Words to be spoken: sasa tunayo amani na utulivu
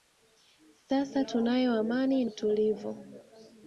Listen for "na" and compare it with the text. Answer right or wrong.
wrong